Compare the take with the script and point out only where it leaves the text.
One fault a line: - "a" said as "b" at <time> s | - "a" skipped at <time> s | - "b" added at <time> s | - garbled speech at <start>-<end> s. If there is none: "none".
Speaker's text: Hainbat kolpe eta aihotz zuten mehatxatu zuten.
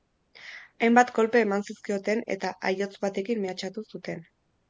- "eman zizkioten" added at 1.4 s
- "zuten" said as "batekin" at 3.0 s